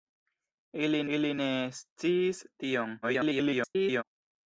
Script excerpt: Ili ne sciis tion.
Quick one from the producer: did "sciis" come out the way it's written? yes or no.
yes